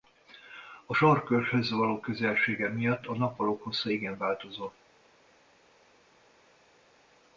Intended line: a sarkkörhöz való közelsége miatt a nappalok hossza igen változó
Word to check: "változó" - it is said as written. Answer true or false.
true